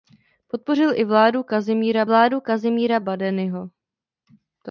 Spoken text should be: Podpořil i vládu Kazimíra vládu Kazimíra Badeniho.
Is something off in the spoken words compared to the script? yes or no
no